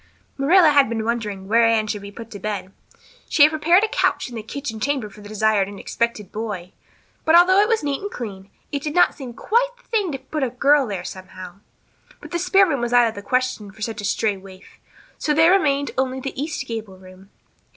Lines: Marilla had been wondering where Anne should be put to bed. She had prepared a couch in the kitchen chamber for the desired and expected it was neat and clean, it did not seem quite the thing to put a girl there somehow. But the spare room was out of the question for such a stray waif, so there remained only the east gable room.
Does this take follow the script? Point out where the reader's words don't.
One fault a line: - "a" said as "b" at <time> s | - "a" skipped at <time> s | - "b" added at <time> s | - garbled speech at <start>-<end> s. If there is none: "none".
- "boy But although" added at 6.3 s